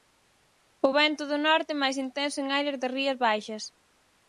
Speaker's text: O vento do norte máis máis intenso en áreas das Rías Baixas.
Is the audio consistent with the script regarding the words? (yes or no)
no